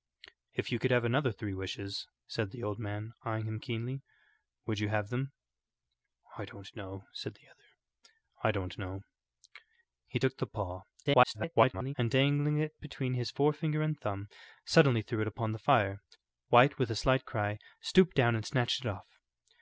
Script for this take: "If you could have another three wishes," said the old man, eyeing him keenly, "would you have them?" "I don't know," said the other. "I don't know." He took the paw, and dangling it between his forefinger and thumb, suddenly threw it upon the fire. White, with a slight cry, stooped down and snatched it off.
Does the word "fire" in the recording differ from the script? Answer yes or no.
no